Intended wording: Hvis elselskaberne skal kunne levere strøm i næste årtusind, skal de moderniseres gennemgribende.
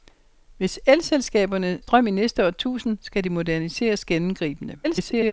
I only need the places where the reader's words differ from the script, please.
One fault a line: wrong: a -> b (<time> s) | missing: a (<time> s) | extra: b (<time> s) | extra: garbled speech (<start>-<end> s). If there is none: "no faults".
missing: skal kunne levere (1.8 s)
extra: garbled speech (4.8-5.3 s)